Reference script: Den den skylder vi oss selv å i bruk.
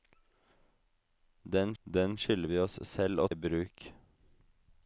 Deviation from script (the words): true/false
false